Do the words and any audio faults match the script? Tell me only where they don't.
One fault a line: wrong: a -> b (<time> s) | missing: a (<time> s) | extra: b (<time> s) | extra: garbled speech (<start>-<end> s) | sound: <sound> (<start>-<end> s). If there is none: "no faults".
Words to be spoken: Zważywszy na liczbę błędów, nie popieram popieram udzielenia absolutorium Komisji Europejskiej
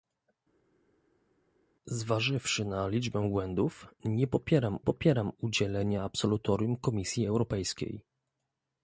no faults